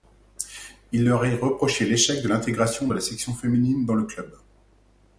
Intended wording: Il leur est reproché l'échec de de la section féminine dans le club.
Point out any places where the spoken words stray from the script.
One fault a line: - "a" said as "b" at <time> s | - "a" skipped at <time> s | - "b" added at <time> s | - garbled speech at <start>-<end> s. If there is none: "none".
- "l'intégration" added at 2.3 s